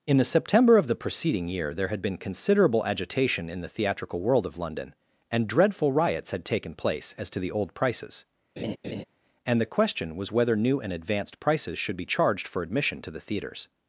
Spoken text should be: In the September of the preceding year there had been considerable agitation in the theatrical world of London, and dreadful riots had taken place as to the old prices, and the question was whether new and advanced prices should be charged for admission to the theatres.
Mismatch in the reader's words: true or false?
false